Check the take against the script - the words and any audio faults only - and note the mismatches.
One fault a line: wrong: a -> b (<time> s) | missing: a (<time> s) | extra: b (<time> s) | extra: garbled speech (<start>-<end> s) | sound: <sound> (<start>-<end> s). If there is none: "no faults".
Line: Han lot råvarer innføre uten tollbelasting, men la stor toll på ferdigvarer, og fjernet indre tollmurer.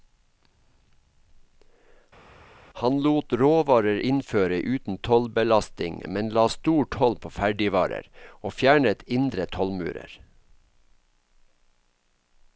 no faults